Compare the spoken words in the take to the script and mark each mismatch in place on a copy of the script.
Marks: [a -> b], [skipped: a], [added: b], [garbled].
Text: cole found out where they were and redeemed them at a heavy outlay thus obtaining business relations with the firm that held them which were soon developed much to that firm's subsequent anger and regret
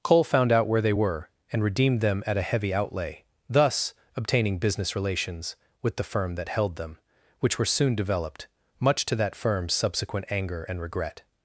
cole found out where they were and redeemed them at a heavy outlay thus obtaining business relations with the firm that held them which were soon developed much to that firm's subsequent anger and regret